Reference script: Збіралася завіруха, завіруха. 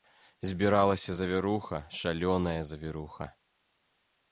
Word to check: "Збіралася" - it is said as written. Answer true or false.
true